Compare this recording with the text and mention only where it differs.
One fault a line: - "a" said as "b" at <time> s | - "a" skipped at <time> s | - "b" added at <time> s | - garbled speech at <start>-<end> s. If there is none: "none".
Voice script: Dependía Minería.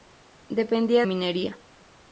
none